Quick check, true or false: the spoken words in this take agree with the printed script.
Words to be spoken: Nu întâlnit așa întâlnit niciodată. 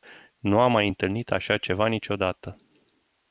false